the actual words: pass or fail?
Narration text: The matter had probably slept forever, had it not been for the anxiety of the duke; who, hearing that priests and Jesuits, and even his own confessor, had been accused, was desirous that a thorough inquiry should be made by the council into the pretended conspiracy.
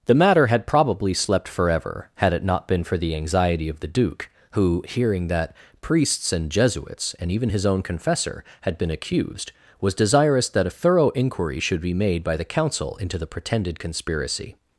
pass